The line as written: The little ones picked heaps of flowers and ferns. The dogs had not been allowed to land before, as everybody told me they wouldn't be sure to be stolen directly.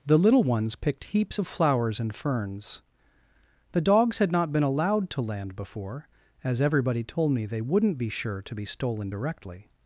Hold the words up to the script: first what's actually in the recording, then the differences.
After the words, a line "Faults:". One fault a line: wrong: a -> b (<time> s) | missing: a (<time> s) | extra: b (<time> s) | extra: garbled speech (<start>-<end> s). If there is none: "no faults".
The little ones picked heaps of flowers and ferns. The dogs had not been allowed to land before, as everybody told me they wouldn't be sure to be stolen directly.
Faults:
no faults